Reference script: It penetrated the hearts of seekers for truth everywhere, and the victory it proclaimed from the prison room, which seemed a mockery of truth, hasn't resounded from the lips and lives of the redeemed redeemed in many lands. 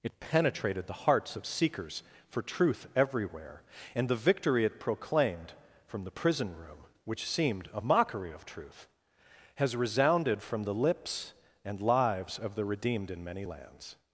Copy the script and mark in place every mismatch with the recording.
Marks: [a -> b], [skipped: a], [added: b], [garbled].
It penetrated the hearts of seekers for truth everywhere, and the victory it proclaimed from the prison room, which seemed a mockery of truth, [hasn't -> has] resounded from the lips and lives of the redeemed [skipped: redeemed] in many lands.